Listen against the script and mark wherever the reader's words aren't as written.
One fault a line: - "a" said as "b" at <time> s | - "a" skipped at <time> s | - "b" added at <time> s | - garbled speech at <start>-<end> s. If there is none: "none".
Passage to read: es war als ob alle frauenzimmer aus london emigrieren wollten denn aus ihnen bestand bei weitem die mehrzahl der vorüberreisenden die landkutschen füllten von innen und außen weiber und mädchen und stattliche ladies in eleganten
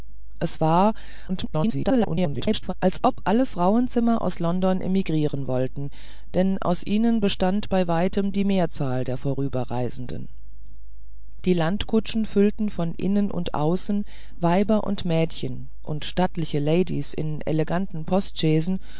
- garbled speech at 1.3-2.7 s